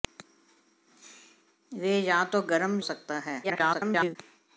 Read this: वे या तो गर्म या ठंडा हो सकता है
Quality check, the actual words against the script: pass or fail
fail